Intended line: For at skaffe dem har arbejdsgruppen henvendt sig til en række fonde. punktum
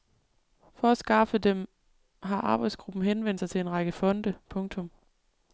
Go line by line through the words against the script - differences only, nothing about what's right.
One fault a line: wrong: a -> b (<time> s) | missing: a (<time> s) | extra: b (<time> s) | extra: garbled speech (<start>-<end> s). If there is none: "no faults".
no faults